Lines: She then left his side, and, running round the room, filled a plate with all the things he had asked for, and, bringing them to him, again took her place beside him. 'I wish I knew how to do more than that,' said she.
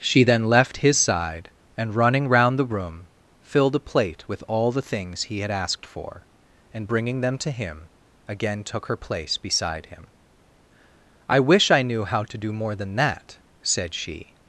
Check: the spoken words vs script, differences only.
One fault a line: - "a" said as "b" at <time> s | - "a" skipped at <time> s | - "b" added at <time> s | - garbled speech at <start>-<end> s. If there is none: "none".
none